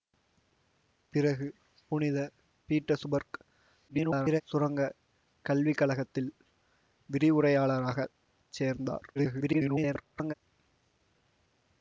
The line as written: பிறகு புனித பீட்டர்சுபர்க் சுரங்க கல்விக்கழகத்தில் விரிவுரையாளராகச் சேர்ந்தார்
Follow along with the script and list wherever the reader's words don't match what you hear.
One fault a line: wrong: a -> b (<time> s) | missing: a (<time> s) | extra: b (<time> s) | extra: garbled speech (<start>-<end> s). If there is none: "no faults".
extra: garbled speech (3.9-4.4 s)
extra: garbled speech (9.2-10.3 s)